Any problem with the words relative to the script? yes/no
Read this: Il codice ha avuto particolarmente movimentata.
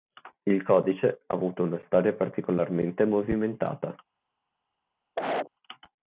yes